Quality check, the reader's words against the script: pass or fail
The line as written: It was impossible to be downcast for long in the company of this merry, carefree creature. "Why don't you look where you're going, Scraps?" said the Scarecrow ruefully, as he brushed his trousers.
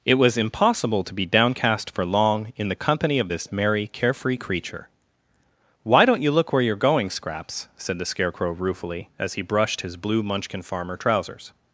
fail